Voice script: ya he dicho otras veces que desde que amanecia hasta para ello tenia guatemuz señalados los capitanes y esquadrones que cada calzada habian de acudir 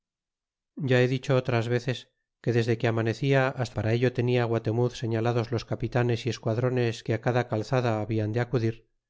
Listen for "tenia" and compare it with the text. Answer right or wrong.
right